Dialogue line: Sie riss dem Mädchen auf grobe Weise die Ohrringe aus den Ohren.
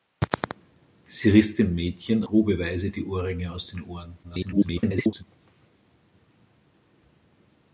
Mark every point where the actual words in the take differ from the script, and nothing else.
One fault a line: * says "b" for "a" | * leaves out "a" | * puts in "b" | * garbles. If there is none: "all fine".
* leaves out "auf"
* garbles